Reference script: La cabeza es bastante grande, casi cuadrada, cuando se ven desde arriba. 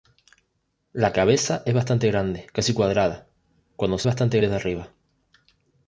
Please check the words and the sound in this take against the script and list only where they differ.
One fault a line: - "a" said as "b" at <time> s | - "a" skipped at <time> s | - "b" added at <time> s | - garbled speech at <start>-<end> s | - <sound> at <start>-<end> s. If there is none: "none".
- "ven" said as "bastante" at 4.0 s